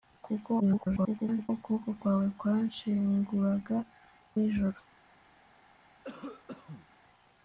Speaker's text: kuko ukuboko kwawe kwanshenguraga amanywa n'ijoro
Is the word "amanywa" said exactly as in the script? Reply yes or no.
no